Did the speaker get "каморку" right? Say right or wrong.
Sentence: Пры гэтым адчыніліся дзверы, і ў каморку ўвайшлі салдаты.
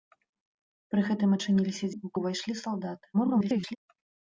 wrong